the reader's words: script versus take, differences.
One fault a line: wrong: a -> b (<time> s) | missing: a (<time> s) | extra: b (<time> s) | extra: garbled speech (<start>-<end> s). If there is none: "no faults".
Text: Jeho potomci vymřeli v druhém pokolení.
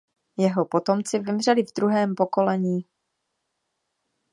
no faults